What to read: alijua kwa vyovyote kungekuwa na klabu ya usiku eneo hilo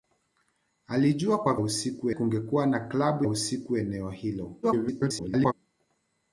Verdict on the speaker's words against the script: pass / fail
fail